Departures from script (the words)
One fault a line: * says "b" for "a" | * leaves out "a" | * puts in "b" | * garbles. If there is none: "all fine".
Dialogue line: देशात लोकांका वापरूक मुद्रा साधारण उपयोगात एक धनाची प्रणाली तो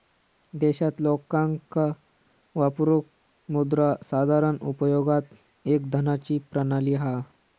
* says "हा" for "तो"